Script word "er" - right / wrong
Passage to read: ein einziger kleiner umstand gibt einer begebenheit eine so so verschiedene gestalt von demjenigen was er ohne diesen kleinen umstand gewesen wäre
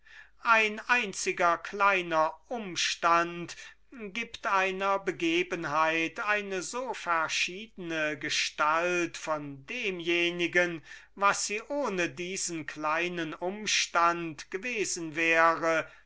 wrong